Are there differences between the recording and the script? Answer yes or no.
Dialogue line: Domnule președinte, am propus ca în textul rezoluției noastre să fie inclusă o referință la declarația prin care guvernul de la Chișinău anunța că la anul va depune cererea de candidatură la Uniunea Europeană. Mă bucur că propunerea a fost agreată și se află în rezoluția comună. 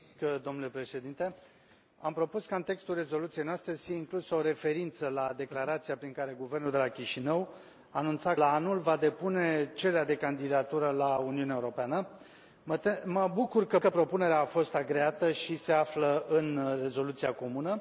yes